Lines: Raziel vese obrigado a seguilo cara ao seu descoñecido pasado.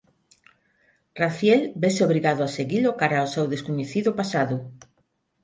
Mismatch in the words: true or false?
false